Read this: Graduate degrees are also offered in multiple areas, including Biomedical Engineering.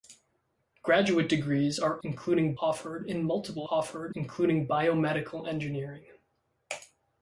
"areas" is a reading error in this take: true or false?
true